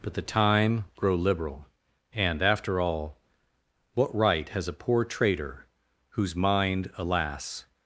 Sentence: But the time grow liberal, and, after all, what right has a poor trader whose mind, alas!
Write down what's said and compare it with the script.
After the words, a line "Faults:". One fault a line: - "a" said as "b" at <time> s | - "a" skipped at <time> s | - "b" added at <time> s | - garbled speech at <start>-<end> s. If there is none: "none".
But the time grow liberal, and, after all, what right has a poor trader whose mind, alas!
Faults:
none